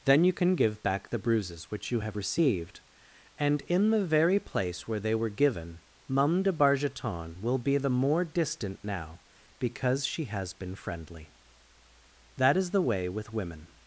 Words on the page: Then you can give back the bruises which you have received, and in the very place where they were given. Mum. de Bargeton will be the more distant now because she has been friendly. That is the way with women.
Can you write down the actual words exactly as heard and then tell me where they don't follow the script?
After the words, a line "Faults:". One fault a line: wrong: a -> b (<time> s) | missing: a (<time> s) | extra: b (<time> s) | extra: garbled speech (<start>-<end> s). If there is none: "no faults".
Then you can give back the bruises which you have received, and in the very place where they were given. Mum. de Bargeton will be the more distant now because she has been friendly. That is the way with women.
Faults:
no faults